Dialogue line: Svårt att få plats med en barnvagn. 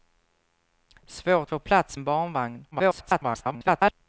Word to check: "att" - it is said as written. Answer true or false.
false